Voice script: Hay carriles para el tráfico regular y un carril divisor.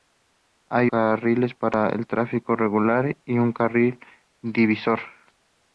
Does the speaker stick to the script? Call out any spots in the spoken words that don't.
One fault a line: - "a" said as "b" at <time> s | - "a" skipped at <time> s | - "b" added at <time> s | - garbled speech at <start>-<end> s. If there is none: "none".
none